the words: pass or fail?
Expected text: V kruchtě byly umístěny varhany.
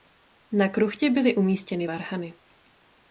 fail